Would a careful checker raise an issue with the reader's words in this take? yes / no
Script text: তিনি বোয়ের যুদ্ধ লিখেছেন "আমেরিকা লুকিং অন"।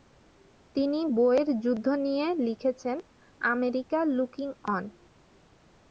yes